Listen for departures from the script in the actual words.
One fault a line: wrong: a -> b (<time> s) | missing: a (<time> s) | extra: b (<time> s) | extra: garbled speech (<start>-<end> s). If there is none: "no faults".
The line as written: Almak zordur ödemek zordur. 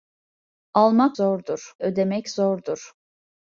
no faults